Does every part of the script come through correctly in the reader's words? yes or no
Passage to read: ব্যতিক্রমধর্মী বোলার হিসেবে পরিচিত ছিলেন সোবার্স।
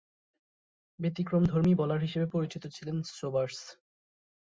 yes